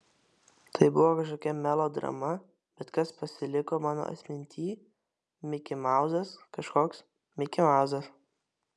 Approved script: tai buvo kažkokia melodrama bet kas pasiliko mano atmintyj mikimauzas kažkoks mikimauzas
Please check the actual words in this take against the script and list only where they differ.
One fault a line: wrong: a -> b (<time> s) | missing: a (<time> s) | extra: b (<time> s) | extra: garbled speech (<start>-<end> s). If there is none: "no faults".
no faults